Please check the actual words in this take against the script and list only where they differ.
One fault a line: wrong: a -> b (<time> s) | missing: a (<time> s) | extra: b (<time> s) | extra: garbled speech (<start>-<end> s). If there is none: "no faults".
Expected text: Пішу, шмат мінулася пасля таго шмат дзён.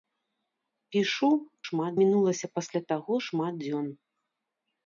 no faults